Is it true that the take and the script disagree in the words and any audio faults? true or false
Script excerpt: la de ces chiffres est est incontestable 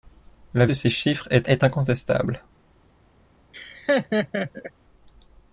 true